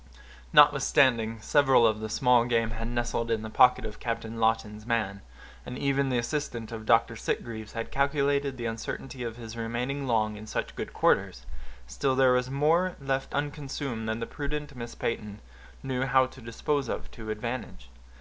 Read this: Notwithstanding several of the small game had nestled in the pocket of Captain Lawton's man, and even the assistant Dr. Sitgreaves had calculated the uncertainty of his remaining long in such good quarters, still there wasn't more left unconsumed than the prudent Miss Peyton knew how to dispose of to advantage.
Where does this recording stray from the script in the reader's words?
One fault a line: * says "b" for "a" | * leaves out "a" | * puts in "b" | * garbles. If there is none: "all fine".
* puts in "of"
* says "was" for "wasn't"